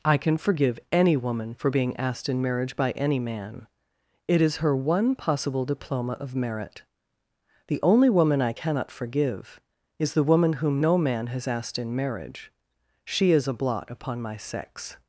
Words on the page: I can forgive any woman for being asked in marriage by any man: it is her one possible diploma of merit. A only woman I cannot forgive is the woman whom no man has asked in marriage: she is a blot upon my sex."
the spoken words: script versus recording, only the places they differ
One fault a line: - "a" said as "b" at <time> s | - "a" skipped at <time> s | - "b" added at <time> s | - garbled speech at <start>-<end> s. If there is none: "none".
- "A" said as "The" at 7.7 s